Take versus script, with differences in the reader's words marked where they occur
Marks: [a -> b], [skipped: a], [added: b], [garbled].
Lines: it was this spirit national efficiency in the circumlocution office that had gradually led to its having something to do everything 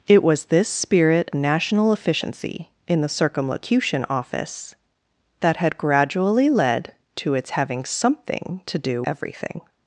it was this spirit national efficiency in the circumlocution office that had gradually led to its having something to do everything